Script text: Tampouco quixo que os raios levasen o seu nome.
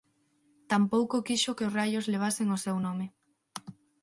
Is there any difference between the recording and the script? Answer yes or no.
no